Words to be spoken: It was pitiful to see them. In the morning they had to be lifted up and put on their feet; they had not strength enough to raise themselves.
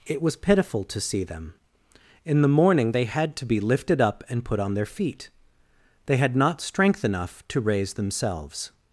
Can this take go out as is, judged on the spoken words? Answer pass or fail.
pass